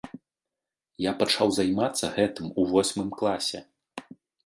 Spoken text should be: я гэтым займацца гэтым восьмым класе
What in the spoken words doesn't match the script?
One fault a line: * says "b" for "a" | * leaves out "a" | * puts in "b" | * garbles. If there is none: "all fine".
* says "пачаў" for "гэтым"
* puts in "у"